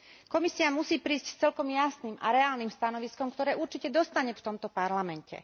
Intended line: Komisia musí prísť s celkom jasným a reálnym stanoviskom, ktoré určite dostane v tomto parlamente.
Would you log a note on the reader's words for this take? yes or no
no